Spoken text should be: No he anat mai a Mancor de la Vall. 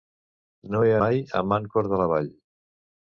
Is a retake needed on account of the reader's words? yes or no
yes